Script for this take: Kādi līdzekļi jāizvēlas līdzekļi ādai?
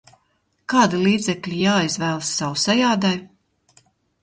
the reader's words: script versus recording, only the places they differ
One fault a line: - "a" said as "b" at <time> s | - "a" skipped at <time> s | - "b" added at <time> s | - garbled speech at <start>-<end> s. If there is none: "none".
- "līdzekļi" said as "sausai" at 2.4 s